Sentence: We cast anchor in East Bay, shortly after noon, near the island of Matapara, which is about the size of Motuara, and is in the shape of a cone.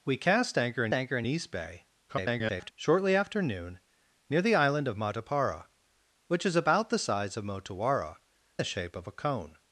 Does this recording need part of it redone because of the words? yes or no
yes